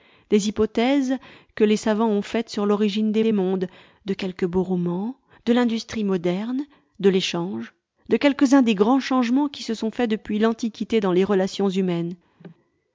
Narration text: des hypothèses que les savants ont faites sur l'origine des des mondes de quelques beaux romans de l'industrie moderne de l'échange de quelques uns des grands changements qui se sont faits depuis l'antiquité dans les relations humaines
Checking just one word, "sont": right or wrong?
right